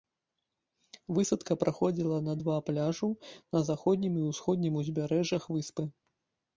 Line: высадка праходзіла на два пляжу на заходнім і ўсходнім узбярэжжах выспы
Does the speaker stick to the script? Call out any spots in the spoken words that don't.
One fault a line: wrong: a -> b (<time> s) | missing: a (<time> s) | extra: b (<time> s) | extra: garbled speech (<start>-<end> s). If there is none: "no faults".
no faults